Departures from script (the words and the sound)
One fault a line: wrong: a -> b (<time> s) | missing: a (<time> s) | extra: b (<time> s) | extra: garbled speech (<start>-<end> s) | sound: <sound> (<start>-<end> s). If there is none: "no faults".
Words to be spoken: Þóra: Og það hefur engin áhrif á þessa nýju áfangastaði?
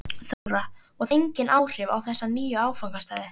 sound: dropout (0.3-0.5 s)
missing: það hefur (1.1 s)